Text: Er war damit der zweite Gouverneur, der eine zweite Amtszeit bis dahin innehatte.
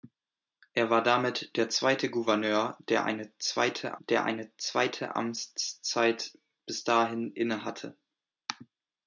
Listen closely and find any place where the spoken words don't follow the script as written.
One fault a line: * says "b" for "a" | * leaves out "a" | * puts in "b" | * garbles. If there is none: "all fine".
* puts in "der eine zweite"